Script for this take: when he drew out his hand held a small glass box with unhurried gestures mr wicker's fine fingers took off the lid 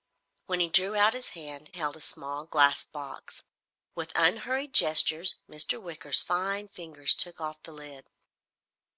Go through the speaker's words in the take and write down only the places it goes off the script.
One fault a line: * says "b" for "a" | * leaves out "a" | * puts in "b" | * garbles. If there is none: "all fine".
all fine